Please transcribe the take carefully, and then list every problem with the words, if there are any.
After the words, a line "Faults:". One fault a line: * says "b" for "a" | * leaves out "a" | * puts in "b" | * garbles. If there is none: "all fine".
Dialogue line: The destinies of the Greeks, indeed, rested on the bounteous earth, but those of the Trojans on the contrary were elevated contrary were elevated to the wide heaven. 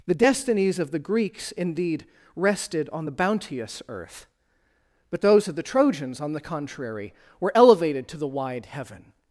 The destinies of the Greeks, indeed, rested on the bounteous earth, but those of the Trojans on the contrary were elevated to the wide heaven.
Faults:
* leaves out "contrary were elevated"